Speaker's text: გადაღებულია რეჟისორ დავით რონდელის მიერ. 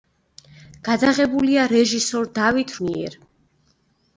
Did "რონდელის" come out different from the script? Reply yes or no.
yes